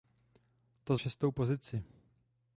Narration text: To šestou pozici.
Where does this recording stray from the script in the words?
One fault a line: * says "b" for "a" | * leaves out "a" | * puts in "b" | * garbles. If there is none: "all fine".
all fine